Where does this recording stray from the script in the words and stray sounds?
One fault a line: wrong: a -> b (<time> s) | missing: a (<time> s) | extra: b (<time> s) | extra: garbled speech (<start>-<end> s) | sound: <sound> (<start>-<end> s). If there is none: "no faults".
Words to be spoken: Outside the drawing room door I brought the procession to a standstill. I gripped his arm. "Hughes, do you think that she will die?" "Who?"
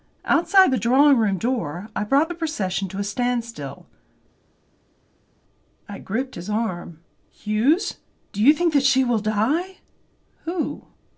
no faults